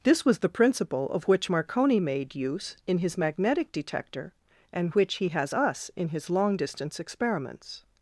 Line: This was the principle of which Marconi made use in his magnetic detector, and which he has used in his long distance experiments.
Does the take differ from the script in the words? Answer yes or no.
yes